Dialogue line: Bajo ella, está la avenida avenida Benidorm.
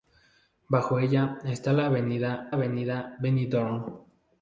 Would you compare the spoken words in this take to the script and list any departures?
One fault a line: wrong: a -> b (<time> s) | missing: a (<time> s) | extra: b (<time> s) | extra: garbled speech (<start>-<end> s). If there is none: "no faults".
no faults